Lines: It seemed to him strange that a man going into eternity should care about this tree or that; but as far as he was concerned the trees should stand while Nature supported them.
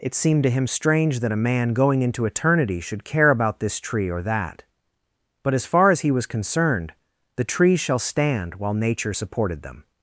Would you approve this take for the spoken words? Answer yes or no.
no